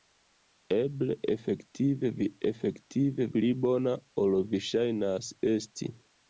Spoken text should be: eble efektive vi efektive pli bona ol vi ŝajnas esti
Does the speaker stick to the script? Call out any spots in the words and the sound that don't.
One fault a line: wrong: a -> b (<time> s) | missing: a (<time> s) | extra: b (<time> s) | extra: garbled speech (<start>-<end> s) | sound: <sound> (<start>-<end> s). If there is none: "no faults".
no faults